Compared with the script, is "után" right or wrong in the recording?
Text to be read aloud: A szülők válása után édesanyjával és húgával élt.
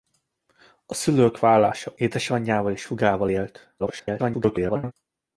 wrong